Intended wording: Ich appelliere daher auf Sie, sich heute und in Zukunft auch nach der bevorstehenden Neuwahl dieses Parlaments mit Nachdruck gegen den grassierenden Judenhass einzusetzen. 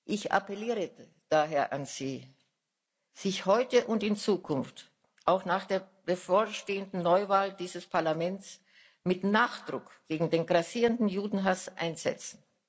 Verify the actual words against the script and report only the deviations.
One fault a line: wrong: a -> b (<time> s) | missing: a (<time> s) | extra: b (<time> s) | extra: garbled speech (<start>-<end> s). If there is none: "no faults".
wrong: auf -> an (1.7 s)